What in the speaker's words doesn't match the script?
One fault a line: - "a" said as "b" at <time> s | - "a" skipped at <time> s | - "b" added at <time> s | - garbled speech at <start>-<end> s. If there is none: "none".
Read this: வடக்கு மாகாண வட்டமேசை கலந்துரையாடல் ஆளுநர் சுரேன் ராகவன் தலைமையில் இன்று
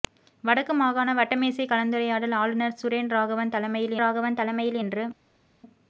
- "ராகவன் தலைமையில்" added at 4.0 s